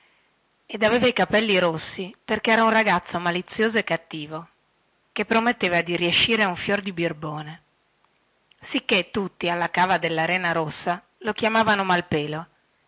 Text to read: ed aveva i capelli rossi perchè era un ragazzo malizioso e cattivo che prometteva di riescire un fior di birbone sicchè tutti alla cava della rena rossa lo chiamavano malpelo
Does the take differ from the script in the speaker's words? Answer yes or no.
no